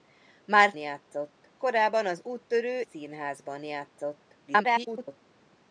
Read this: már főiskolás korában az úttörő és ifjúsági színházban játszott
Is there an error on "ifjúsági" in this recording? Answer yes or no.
yes